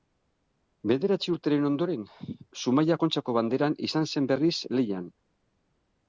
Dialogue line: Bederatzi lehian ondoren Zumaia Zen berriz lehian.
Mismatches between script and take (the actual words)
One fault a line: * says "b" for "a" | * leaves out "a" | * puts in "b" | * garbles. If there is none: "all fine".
* says "urteren" for "lehian"
* puts in "Kontxako Banderan izan"